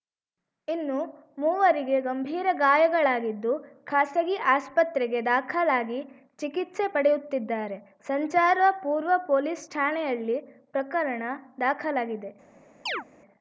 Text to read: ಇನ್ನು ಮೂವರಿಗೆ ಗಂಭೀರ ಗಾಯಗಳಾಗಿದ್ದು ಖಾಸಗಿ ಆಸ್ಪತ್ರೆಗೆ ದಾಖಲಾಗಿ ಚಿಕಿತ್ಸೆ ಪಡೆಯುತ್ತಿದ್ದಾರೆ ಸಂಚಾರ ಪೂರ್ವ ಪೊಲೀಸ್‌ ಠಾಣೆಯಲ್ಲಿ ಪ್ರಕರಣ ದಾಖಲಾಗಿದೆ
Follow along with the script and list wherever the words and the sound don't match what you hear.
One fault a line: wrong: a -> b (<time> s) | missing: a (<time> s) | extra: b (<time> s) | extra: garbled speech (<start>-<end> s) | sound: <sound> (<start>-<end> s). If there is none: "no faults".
sound: chirp (12.9-13.1 s)